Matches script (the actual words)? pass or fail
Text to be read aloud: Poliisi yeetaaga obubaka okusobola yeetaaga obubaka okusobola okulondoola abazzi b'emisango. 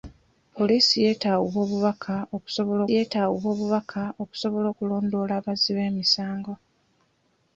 pass